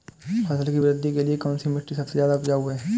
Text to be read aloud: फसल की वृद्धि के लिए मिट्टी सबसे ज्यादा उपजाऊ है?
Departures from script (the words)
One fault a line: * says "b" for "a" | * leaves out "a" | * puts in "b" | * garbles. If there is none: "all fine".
* puts in "कौनसी"